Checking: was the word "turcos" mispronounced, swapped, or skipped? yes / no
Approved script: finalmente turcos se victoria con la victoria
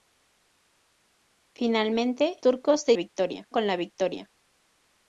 no